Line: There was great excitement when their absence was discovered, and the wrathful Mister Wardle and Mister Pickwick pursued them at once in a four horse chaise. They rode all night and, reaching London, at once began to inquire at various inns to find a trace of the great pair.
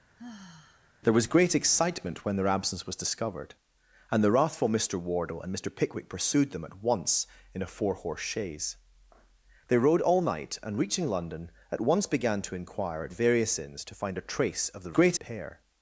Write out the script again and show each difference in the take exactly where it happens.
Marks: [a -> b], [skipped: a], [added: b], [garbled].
There was great excitement when their absence was discovered, and the wrathful Mister Wardle and Mister Pickwick pursued them at once in a four horse chaise. They rode all night and, reaching London, at once began to inquire at various inns to find a trace of the great pair.